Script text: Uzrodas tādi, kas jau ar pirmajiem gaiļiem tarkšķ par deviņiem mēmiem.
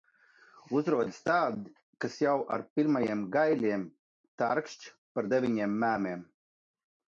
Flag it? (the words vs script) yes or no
no